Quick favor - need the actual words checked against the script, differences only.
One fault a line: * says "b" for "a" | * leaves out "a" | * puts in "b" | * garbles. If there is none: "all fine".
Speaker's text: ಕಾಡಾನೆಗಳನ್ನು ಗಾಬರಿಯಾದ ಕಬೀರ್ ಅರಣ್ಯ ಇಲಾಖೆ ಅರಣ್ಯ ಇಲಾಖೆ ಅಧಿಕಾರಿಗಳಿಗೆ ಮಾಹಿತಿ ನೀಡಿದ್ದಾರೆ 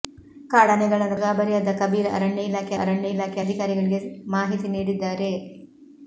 all fine